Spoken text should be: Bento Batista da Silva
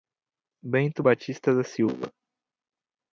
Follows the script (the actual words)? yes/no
yes